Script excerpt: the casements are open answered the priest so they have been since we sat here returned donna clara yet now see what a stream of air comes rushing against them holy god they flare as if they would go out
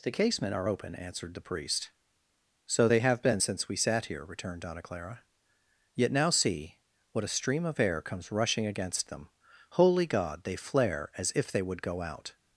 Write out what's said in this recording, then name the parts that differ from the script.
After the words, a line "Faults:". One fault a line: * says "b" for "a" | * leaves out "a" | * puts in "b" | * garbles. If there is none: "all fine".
the casement are open answered the priest so they have been since we sat here returned donna clara yet now see what a stream of air comes rushing against them holy god they flare as if they would go out
Faults:
* says "casement" for "casements"